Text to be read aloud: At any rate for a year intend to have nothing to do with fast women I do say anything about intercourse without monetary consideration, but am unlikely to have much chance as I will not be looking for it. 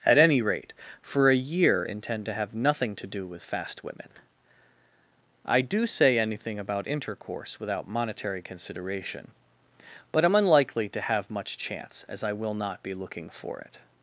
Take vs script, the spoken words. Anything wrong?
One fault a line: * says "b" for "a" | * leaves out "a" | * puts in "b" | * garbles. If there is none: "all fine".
all fine